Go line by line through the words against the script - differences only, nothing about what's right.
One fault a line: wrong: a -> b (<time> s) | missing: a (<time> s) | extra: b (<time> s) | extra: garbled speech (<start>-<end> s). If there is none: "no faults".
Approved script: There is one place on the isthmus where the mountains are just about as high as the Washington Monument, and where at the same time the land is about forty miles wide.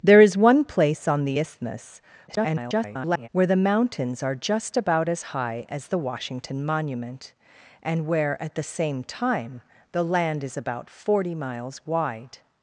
extra: garbled speech (2.3-3.3 s)